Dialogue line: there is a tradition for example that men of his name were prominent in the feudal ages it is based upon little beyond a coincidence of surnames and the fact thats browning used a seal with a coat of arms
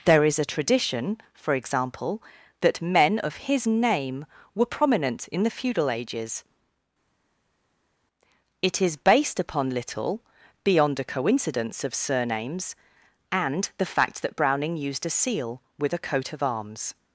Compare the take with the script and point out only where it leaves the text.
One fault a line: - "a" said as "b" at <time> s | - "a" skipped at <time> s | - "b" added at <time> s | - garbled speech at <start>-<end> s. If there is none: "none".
- "thats" said as "that" at 14.2 s